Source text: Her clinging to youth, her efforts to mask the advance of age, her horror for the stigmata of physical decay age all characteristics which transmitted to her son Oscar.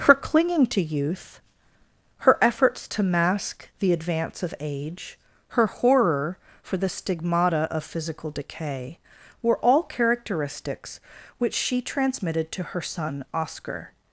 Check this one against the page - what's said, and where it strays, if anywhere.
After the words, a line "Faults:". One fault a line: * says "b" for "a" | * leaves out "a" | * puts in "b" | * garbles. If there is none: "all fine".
Her clinging to youth, her efforts to mask the advance of age, her horror for the stigmata of physical decay were all characteristics which she transmitted to her son Oscar.
Faults:
* says "were" for "age"
* puts in "she"